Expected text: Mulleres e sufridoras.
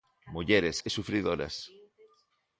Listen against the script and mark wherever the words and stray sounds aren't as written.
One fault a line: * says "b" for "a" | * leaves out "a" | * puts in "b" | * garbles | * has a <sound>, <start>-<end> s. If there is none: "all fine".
all fine